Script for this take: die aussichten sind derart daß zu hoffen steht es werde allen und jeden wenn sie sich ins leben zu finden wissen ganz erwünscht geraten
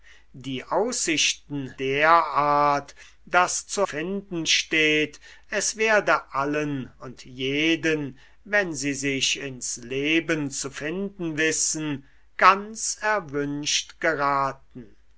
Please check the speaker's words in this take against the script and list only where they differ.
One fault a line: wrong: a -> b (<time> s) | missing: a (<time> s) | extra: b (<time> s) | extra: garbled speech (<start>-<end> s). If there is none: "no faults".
missing: sind (1.8 s)
wrong: hoffen -> finden (3.8 s)